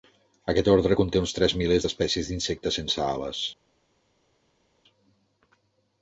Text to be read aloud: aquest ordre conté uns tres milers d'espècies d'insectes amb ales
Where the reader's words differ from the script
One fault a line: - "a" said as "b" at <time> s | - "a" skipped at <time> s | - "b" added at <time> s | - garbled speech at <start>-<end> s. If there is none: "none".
- "amb" said as "sense" at 2.8 s